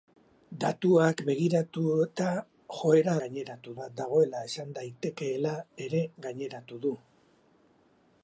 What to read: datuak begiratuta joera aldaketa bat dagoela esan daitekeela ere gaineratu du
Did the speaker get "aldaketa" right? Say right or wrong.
wrong